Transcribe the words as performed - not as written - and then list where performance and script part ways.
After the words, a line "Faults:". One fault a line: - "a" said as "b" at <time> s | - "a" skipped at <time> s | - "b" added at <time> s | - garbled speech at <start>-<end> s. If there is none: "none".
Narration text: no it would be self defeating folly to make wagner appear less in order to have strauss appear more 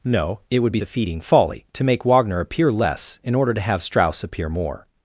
no it would be defeating folly to make wagner appear less in order to have strauss appear more
Faults:
- "self" skipped at 0.8 s